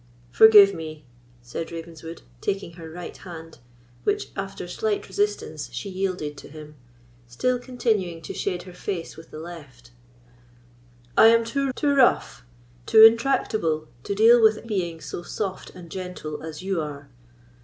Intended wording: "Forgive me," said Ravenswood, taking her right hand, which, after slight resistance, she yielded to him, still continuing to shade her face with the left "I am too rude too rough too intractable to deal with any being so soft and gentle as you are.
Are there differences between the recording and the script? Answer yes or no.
yes